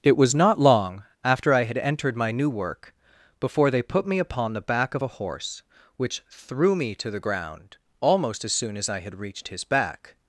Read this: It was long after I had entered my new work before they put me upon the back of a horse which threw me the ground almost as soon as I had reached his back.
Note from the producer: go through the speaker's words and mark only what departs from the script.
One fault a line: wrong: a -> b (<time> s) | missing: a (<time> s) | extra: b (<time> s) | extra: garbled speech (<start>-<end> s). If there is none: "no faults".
extra: not (0.3 s)
extra: to (7.0 s)